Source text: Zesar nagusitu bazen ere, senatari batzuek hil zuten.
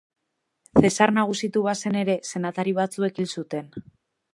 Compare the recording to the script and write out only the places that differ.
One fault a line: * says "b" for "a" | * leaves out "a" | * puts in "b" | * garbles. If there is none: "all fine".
all fine